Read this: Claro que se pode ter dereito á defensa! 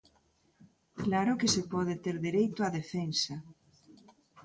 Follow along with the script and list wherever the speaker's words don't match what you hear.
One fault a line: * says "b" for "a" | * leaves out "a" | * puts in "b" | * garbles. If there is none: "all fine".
all fine